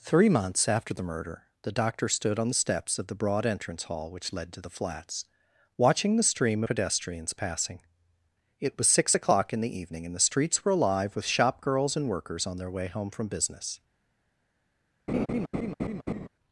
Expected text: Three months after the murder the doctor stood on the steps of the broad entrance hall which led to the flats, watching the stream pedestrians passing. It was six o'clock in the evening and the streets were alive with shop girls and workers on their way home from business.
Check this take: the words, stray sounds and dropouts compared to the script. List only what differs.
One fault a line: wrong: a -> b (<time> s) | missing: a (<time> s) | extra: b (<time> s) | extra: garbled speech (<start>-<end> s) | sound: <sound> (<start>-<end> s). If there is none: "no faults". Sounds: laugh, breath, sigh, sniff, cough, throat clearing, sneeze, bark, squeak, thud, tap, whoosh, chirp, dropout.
sound: laugh (15.1-16.3 s)